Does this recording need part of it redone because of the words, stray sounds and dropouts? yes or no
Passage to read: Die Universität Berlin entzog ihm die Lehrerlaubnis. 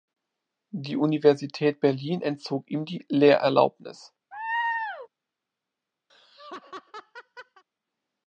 yes